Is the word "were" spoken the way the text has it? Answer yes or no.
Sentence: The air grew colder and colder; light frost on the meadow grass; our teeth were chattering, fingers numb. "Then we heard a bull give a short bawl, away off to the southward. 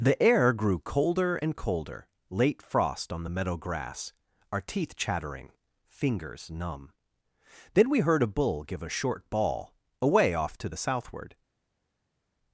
no